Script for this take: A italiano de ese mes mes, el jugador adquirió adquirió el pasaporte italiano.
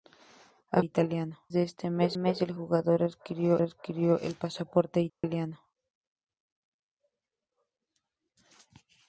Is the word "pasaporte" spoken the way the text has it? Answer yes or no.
yes